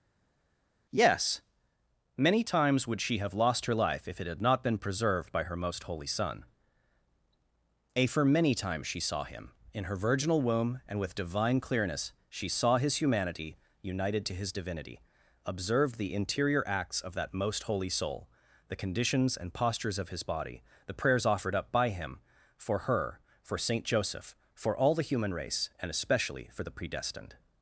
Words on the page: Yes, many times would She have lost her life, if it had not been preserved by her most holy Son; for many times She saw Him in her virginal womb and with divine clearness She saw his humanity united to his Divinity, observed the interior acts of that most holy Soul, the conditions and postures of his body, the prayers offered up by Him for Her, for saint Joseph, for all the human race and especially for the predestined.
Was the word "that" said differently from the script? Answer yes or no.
no